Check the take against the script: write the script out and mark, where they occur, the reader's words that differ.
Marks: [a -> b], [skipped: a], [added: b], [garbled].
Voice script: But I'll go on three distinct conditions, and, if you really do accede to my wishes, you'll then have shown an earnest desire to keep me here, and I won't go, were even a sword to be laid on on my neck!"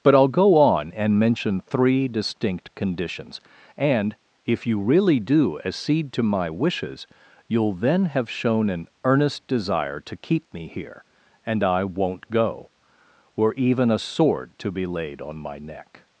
But I'll go on [added: and mention] three distinct conditions, and, if you really do accede to my wishes, you'll then have shown an earnest desire to keep me here, and I won't go, were even a sword to be laid on [skipped: on] my neck!"